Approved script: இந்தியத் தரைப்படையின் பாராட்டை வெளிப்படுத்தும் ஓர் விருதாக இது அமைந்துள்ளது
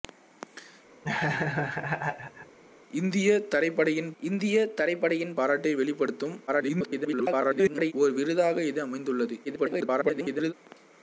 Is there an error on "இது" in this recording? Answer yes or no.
no